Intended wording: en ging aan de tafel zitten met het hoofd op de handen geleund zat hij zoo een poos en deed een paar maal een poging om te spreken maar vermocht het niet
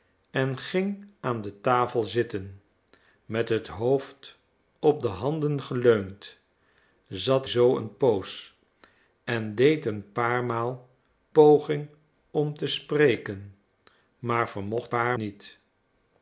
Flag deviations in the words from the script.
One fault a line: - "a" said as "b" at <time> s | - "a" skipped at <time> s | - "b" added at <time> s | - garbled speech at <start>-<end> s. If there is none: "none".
- "hij" skipped at 7.5 s
- "een" skipped at 10.9 s
- "het" said as "paar" at 14.9 s